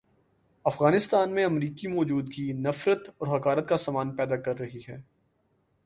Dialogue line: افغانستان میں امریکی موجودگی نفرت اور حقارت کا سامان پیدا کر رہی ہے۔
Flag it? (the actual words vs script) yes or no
no